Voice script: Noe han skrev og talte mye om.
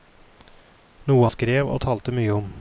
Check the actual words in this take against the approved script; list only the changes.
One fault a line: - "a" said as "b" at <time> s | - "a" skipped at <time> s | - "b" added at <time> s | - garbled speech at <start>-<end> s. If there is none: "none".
- "han" skipped at 1.3 s